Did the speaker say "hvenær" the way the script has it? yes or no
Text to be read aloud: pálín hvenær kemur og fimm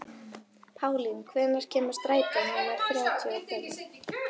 yes